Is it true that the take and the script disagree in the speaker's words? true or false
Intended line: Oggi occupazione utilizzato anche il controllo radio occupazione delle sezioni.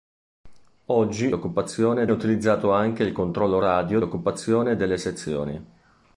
false